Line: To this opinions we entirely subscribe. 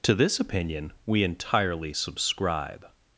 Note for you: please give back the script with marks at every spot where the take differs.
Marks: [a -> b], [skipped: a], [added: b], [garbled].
To this [opinions -> opinion] we entirely subscribe.